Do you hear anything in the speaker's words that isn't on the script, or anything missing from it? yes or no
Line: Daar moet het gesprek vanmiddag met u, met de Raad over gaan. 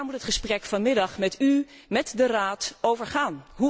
no